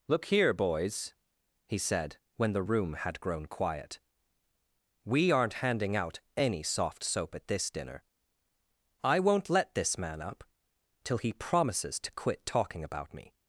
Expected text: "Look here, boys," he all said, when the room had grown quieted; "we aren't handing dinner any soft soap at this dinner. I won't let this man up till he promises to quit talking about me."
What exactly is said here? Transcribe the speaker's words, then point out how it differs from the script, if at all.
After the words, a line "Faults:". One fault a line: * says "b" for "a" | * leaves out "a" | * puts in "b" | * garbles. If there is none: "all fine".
"Look here, boys," he said, when the room had grown quiet; "we aren't handing out any soft soap at this dinner. I won't let this man up till he promises to quit talking about me."
Faults:
* leaves out "all"
* says "quiet" for "quieted"
* says "out" for "dinner"